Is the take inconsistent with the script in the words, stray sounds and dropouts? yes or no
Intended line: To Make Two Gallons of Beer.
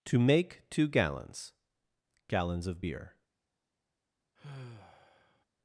yes